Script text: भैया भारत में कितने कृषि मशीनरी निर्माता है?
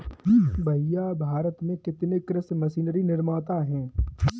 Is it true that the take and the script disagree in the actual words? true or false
false